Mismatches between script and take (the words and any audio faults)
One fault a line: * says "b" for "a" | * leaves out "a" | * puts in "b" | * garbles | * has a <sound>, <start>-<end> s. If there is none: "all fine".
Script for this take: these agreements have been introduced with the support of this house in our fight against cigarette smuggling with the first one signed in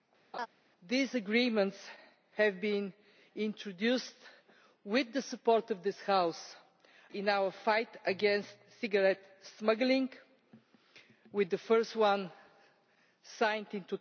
* has a laugh, 0.3-0.5 s